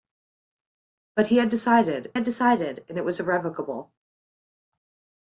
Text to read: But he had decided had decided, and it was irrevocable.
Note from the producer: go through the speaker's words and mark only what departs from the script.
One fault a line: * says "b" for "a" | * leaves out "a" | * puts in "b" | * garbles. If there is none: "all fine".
all fine